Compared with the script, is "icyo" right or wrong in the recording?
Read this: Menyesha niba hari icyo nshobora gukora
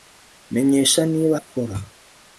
wrong